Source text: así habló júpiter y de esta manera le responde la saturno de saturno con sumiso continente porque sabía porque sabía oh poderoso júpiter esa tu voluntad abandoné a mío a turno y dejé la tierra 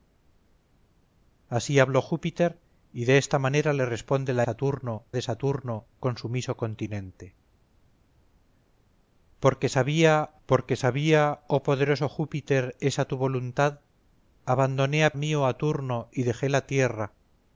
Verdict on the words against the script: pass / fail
pass